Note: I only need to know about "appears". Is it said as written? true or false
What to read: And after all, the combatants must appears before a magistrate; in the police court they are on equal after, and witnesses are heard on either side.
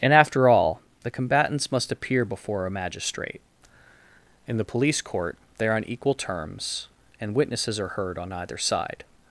false